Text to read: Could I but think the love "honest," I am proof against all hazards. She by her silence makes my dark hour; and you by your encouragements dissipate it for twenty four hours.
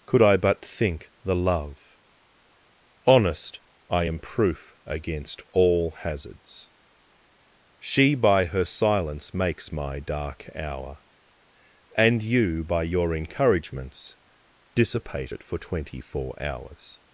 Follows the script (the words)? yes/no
yes